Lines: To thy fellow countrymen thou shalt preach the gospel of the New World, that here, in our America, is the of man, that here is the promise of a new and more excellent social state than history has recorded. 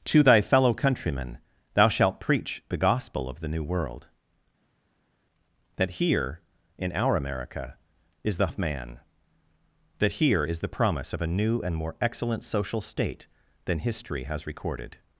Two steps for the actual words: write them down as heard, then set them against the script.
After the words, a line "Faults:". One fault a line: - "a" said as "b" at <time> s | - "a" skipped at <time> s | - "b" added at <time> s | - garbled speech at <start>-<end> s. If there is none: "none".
To thy fellow countrymen thou shalt preach the gospel of the New World, that here, in our America, is the of man, that here is the promise of a new and more excellent social state than history has recorded.
Faults:
none